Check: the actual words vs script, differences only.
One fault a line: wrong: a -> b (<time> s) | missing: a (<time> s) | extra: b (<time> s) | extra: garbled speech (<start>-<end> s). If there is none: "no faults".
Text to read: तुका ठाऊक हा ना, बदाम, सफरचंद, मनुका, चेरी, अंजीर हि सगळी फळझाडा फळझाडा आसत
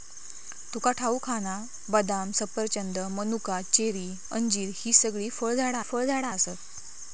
no faults